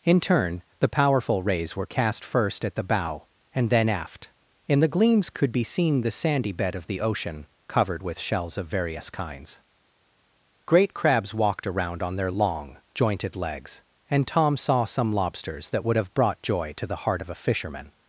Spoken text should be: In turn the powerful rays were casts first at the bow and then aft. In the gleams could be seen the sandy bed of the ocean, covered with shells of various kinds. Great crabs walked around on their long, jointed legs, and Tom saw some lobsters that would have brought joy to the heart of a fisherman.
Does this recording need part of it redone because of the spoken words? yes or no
yes